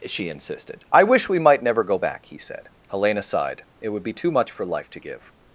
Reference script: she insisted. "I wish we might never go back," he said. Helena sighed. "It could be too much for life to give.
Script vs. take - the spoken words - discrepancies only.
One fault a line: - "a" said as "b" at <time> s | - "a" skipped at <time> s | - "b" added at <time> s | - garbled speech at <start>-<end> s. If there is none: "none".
- "could" said as "would" at 3.9 s